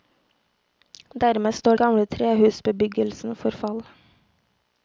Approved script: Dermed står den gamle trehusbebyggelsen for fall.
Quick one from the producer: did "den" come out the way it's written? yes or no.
no